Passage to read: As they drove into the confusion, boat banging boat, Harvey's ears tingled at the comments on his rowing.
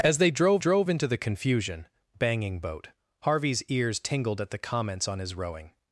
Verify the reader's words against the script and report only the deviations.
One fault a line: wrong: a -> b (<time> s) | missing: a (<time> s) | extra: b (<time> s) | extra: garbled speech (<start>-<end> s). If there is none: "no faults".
extra: drove (0.6 s)
missing: boat (1.9 s)